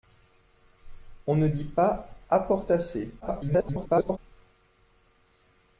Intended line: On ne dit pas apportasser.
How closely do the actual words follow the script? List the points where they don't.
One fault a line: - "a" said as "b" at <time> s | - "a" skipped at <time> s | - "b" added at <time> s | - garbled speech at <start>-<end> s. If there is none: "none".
- garbled speech at 3.2-4.2 s